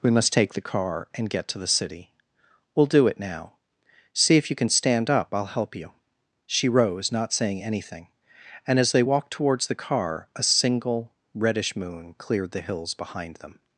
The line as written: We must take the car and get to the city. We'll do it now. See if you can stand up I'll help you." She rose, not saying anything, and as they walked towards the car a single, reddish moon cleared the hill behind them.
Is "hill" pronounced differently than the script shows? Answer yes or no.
yes